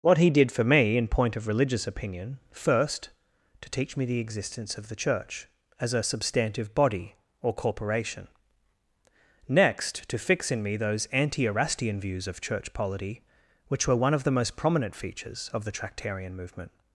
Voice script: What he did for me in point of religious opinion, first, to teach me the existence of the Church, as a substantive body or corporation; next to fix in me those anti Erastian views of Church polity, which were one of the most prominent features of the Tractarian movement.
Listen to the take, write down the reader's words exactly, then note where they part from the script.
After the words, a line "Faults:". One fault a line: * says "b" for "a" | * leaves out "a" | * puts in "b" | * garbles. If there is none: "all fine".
What he did for me in point of religious opinion, first, to teach me the existence of the Church, as a substantive body or corporation; next to fix in me those anti Erastian views of Church polity, which were one of the most prominent features of the Tractarian movement.
Faults:
all fine